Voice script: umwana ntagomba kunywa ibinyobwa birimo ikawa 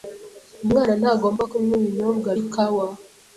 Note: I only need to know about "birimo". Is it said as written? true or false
false